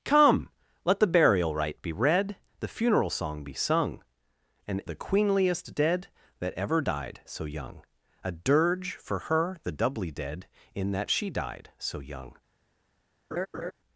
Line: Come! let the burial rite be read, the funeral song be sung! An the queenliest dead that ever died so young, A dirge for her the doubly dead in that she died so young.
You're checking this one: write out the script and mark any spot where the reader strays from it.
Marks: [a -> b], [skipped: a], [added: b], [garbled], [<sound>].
Come! let the burial rite be read, the funeral song be sung! An the queenliest dead that ever died so young, A dirge for her the doubly dead in that she died so young. [laugh]